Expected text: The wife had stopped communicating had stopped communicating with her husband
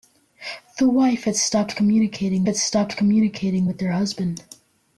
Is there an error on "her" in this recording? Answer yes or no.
no